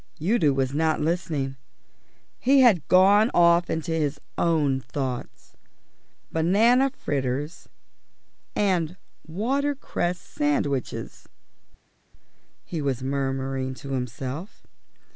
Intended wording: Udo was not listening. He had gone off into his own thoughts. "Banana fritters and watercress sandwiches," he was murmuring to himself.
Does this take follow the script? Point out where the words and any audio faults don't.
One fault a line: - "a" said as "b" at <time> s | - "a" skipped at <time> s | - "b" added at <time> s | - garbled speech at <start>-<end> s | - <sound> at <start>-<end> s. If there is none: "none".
none